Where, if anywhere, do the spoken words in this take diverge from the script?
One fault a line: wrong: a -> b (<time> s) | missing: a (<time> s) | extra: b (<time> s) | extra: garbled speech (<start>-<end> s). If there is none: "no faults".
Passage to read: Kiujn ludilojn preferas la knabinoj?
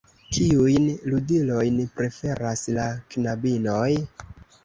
no faults